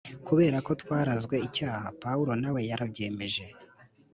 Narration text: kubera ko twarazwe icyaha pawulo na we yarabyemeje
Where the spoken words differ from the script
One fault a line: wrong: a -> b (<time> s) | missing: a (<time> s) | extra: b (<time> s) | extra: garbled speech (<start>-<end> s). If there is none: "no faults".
no faults